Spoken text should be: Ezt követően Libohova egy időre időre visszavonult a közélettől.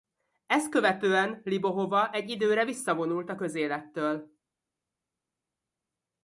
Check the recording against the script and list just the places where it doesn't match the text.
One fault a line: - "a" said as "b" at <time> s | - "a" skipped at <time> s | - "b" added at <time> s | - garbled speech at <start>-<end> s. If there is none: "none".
- "időre" skipped at 2.6 s